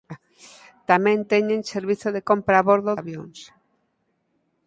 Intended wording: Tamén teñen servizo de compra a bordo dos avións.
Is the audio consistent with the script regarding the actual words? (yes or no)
no